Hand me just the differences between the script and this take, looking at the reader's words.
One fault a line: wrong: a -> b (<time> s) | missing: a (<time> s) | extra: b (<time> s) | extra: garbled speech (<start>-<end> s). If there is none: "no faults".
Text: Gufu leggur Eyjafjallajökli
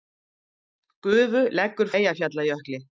no faults